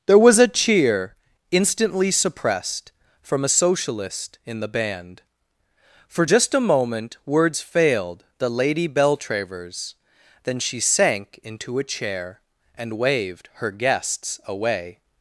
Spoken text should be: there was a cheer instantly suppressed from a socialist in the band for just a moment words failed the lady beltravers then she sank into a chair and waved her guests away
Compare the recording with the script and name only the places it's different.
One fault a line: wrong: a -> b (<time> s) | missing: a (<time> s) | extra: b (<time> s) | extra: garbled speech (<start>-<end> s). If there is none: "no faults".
no faults